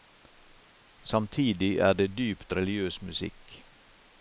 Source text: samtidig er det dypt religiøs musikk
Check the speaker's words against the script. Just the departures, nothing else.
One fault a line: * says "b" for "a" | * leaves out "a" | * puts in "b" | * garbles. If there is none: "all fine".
all fine